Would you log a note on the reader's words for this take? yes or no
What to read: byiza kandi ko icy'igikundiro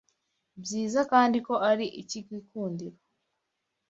yes